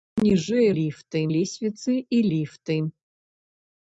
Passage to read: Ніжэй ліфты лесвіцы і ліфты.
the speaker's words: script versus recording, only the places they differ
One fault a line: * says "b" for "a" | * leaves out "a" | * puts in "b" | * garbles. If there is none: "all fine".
all fine